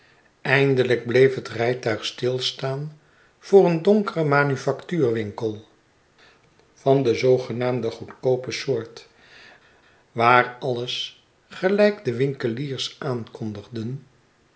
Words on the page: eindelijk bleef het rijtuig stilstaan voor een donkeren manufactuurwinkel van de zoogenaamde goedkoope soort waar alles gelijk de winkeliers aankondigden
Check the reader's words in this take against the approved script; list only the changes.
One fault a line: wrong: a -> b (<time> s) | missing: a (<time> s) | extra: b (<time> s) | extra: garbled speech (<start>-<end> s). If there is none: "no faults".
no faults